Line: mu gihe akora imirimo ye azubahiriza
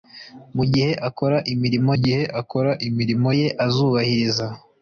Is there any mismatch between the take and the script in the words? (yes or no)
yes